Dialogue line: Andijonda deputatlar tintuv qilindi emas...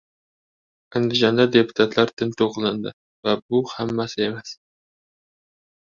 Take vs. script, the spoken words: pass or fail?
fail